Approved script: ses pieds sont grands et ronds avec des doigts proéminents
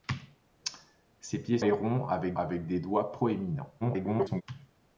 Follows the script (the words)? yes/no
no